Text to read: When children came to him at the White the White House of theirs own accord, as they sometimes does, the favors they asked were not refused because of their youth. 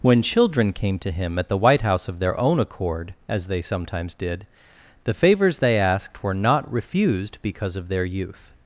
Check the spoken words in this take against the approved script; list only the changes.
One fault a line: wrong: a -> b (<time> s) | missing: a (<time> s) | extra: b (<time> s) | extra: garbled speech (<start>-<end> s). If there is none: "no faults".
missing: the White (1.8 s)
wrong: theirs -> their (2.2 s)
wrong: does -> did (4.2 s)